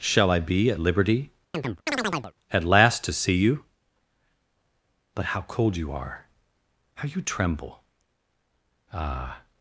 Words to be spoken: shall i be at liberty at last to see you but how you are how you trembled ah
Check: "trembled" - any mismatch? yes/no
yes